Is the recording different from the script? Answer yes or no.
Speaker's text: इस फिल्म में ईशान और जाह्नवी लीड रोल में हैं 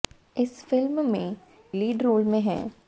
yes